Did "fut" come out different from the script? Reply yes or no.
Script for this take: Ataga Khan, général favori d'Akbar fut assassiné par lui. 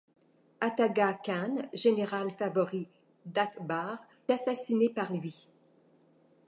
yes